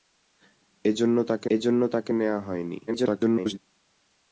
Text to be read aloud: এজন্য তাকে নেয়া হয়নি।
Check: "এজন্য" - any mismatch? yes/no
no